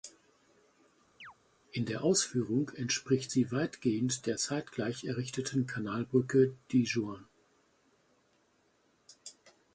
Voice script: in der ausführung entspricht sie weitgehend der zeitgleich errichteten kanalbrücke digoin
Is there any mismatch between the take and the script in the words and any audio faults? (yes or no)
yes